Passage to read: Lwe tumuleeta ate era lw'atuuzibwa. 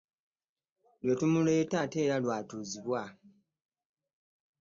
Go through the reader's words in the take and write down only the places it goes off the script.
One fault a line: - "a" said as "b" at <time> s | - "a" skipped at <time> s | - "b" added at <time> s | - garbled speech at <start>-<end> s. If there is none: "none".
none